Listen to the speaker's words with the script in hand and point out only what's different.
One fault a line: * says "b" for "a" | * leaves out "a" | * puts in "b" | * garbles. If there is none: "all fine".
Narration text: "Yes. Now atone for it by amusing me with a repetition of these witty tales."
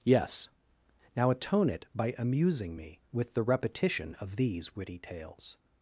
* leaves out "for"
* says "the" for "a"